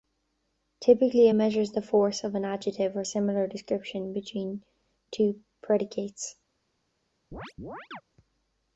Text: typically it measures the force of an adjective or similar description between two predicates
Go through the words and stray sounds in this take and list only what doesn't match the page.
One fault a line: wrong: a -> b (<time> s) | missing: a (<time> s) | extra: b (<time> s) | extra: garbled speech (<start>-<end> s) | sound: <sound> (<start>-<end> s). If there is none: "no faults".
sound: chirp (7.3-8.0 s)